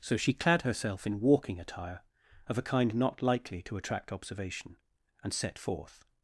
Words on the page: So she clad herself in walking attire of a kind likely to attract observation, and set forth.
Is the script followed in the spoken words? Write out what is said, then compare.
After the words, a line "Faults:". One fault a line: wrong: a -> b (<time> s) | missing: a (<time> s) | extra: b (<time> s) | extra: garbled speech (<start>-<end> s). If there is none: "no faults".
So she clad herself in walking attire of a kind not likely to attract observation, and set forth.
Faults:
extra: not (2.9 s)